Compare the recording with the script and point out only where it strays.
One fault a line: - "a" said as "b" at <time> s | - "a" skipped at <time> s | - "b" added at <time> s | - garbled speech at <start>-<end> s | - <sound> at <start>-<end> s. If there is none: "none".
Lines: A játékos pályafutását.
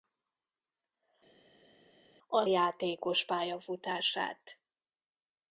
none